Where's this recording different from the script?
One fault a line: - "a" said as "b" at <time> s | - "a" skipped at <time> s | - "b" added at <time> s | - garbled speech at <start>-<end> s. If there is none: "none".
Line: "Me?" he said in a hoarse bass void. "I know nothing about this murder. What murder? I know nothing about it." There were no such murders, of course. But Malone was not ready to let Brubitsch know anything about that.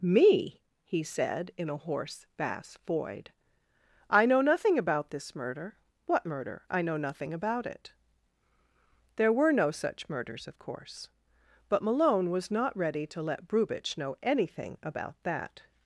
none